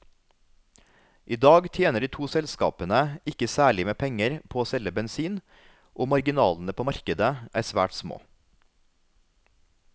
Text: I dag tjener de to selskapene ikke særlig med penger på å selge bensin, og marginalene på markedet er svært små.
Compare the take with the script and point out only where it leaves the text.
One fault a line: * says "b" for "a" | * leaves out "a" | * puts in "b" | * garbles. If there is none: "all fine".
all fine